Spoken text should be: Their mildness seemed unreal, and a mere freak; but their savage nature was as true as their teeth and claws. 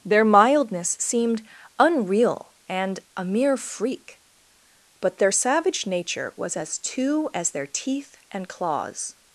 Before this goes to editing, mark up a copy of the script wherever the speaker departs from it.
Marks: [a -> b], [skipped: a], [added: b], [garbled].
Their mildness seemed unreal, and a mere freak; but their savage nature was as [true -> two] as their teeth and claws.